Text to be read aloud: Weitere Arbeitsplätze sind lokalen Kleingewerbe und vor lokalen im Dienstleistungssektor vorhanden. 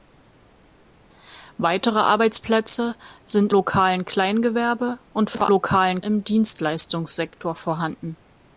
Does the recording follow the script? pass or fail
pass